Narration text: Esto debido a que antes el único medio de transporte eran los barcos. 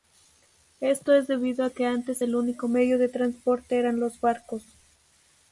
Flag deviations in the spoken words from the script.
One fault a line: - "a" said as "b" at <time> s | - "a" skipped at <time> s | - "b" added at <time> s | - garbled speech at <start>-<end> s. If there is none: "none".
- "es" added at 1.1 s